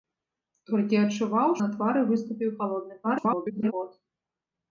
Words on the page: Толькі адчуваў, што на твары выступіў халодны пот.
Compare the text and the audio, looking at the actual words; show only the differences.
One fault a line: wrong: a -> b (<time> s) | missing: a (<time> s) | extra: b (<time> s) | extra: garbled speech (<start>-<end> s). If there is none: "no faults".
missing: што (1.5 s)
extra: garbled speech (3.0-3.7 s)